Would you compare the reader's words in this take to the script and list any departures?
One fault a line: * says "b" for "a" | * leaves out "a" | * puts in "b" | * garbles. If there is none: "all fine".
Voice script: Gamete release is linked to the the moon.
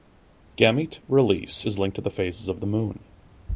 * puts in "phases of"